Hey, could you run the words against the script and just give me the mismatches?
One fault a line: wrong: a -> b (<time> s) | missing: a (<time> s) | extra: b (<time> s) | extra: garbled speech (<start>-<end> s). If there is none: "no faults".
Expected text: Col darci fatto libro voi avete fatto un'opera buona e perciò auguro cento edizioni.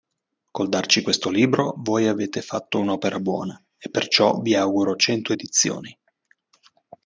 wrong: fatto -> questo (1.0 s)
extra: vi (4.4 s)